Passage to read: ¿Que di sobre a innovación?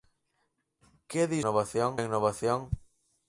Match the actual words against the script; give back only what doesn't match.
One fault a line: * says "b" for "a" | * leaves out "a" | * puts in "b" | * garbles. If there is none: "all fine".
* says "innovación" for "sobre"